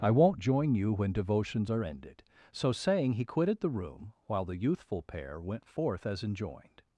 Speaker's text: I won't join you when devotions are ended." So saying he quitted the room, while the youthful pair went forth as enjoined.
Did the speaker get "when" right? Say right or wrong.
right